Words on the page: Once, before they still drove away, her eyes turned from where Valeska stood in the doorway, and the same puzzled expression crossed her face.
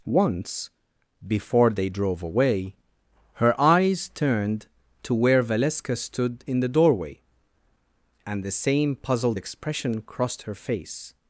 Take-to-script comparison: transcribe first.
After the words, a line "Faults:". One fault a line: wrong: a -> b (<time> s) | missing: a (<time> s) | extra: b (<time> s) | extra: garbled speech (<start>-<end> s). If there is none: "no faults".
Once, before they drove away, her eyes turned to where Valeska stood in the doorway, and the same puzzled expression crossed her face.
Faults:
missing: still (1.9 s)
wrong: from -> to (5.0 s)